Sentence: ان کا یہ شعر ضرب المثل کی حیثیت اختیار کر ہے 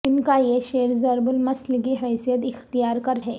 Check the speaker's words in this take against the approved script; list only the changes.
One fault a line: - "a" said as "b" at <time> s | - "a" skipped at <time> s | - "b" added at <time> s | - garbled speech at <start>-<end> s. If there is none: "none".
none